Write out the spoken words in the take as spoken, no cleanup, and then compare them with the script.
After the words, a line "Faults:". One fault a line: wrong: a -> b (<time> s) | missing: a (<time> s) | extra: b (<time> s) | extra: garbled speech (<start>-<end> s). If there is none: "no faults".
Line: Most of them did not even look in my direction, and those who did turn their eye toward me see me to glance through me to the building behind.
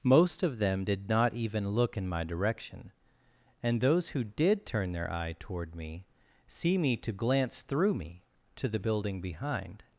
Most of them did not even look in my direction, and those who did turn their eye toward me see me to glance through me to the building behind.
Faults:
no faults